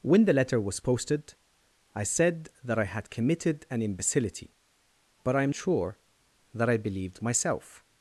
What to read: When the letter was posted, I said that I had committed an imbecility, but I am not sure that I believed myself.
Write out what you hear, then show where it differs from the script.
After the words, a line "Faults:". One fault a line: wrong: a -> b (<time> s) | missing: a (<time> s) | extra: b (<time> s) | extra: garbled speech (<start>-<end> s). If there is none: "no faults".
When the letter was posted, I said that I had committed an imbecility, but I am sure that I believed myself.
Faults:
missing: not (5.5 s)